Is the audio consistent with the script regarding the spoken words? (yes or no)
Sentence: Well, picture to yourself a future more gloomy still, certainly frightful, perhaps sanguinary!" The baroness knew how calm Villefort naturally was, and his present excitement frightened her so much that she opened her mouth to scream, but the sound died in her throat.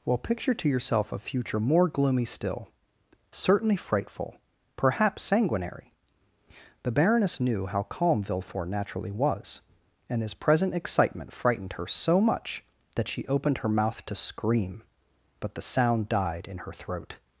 yes